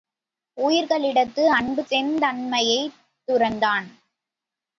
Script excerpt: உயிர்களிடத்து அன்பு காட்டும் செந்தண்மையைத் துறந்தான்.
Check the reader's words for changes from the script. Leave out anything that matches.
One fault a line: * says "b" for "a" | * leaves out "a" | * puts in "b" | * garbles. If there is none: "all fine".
* leaves out "காட்டும்"